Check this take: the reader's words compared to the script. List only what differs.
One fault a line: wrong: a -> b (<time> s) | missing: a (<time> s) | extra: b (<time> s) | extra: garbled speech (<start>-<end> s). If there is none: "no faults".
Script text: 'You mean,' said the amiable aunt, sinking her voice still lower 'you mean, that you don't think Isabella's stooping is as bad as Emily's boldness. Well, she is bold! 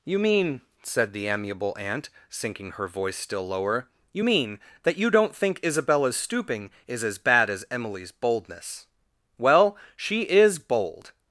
no faults